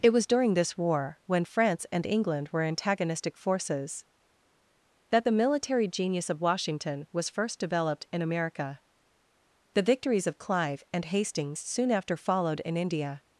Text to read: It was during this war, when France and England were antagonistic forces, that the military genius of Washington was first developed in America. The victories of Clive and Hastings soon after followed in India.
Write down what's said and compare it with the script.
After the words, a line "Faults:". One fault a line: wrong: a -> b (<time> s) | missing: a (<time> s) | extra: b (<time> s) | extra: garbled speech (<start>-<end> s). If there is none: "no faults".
It was during this war, when France and England were antagonistic forces, that the military genius of Washington was first developed in America. The victories of Clive and Hastings soon after followed in India.
Faults:
no faults